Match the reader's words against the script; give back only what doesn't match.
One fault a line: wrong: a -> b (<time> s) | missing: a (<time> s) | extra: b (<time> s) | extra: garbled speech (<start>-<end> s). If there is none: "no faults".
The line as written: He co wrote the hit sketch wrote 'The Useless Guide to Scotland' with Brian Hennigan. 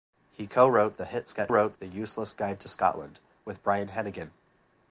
no faults